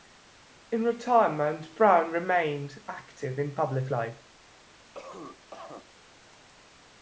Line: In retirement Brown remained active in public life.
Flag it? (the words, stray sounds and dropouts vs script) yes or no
yes